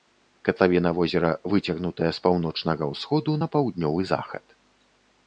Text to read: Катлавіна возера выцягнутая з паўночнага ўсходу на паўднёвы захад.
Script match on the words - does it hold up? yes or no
yes